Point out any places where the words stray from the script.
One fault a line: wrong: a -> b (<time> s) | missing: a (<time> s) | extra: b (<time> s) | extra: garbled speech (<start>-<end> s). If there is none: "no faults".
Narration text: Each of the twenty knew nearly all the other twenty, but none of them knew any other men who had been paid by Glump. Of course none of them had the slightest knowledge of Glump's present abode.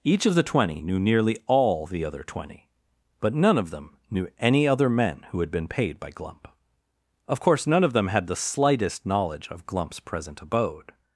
no faults